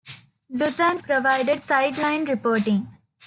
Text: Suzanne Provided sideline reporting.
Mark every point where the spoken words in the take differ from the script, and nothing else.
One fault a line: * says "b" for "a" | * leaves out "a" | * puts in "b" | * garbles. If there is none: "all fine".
all fine